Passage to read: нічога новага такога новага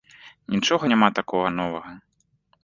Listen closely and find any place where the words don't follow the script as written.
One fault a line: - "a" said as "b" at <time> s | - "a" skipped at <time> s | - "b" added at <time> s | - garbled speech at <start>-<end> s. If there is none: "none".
- "новага" said as "няма" at 0.9 s